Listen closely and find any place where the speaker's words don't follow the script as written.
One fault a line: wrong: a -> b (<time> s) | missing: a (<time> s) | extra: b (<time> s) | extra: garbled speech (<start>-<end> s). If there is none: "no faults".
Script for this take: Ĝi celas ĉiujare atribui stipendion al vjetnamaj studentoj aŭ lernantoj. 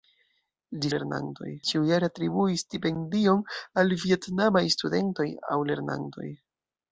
wrong: celas -> lernantoj (1.0 s)